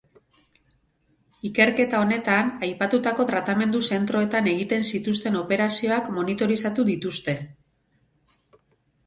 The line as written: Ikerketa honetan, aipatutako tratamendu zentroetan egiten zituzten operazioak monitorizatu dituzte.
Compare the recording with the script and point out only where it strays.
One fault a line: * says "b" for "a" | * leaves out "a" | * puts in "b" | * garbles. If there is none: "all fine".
all fine